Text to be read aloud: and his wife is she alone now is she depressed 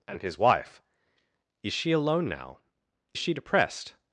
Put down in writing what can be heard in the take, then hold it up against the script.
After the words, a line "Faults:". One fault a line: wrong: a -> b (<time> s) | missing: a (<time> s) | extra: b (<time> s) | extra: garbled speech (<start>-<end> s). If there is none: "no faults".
and his wife is she alone now she depressed
Faults:
missing: is (2.6 s)